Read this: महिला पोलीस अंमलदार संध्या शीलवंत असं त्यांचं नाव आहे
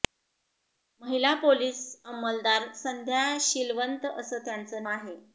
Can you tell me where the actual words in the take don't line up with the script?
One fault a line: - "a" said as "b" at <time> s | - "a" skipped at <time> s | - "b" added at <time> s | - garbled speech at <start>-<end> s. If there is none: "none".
- "नाव" skipped at 4.8 s